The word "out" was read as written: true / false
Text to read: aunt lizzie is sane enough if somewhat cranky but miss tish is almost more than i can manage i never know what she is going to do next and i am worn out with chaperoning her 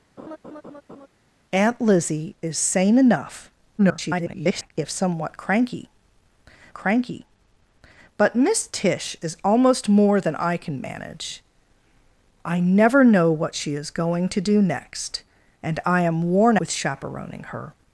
false